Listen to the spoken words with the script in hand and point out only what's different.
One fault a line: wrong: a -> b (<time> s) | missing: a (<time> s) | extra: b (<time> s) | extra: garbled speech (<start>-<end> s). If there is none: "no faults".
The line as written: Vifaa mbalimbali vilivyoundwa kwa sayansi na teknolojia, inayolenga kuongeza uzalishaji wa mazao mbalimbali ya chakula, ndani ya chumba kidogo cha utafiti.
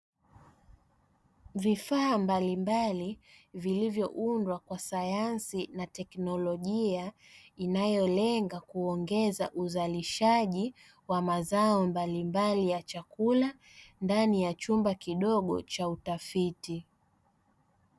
no faults